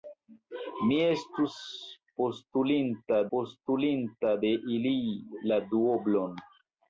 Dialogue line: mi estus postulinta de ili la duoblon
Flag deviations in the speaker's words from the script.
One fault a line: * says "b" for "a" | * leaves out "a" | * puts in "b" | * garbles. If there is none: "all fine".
* puts in "postulinta"